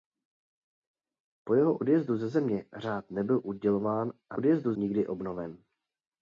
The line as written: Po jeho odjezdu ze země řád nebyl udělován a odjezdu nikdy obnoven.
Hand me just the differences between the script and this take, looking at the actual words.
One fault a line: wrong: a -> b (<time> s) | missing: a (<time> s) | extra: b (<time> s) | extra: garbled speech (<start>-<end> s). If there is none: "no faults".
no faults